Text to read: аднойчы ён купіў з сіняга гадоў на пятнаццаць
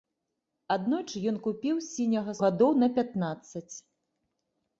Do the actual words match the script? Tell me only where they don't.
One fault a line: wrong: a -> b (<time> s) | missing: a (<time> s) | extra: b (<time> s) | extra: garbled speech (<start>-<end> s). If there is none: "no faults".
no faults